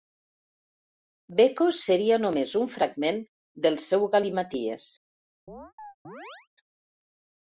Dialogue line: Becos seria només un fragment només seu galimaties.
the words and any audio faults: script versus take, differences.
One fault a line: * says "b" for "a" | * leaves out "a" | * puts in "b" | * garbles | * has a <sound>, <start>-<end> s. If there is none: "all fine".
* says "del" for "només"
* has a chirp, 5.5-6.5 s